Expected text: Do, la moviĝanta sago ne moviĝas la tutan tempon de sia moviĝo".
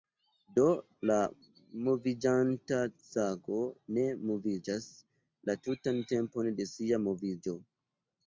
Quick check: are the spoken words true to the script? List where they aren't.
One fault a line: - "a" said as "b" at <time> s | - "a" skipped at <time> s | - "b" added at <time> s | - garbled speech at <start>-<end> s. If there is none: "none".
none